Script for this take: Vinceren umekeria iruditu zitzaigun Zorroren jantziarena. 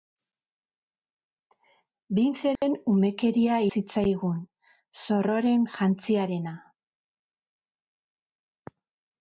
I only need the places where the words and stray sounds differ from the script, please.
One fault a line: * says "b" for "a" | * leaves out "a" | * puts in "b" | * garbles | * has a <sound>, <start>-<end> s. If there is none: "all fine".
* has a dropout, 2.6-2.6 s
* leaves out "iruditu"